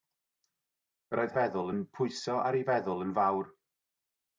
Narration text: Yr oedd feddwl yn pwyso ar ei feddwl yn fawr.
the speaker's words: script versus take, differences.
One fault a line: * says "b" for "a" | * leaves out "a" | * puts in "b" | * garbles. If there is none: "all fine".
all fine